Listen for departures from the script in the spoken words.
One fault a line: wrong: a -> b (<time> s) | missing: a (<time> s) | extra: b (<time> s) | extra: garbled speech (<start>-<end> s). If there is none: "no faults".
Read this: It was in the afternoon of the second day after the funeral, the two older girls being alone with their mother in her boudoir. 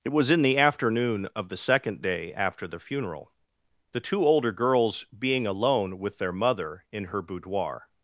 no faults